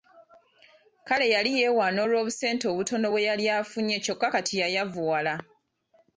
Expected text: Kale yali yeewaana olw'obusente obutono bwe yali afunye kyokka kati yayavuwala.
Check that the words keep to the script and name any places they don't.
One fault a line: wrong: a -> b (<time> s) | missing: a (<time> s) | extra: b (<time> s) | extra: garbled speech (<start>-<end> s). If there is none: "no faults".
no faults